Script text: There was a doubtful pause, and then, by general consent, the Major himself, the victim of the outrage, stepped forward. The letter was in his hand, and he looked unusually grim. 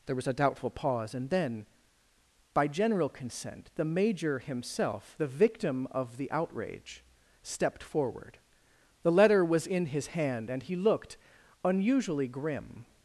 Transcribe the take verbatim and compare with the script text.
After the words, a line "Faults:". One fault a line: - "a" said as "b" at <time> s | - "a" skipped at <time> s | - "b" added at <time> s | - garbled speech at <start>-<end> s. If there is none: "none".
There was a doubtful pause, and then, by general consent, the Major himself, the victim of the outrage, stepped forward. The letter was in his hand, and he looked unusually grim.
Faults:
none